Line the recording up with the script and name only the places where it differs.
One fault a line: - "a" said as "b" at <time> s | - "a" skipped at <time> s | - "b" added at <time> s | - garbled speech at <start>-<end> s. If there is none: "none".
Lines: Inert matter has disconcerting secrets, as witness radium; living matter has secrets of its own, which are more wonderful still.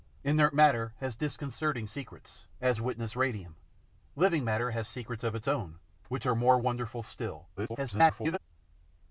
- garbled speech at 7.6-8.4 s